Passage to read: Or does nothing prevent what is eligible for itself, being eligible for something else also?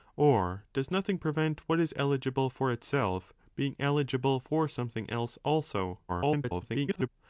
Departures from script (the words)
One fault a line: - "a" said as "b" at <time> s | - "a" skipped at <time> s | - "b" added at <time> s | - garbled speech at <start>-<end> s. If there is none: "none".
- garbled speech at 6.1-7.1 s